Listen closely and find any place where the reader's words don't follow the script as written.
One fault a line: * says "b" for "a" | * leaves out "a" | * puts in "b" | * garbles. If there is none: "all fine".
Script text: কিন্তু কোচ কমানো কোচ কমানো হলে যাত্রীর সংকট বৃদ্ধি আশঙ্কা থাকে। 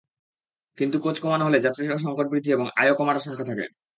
* leaves out "কোচ কমানো"
* puts in "এবং আয়ও কমার"